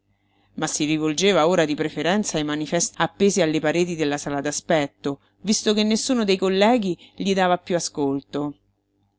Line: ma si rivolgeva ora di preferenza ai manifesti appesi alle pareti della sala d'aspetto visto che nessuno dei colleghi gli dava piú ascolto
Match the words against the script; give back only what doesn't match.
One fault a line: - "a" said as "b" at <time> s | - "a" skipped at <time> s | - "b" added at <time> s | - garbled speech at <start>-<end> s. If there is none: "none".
none